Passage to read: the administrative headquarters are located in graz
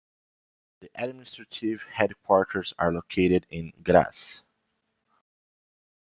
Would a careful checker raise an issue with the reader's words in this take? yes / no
no